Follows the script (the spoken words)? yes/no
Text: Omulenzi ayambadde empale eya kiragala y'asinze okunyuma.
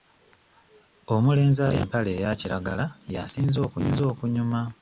yes